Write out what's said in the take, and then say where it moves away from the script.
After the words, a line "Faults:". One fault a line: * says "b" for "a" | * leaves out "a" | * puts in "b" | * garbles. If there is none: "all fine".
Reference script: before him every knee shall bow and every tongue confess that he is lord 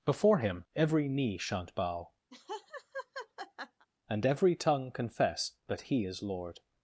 before him every knee shan't bow and every tongue confess that he is lord
Faults:
* says "shan't" for "shall"